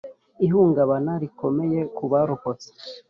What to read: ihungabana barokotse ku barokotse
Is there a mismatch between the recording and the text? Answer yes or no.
yes